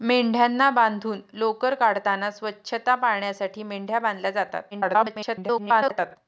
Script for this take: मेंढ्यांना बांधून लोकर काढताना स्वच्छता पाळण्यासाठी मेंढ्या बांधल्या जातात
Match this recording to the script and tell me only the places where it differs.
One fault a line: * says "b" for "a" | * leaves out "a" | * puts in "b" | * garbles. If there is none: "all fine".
* garbles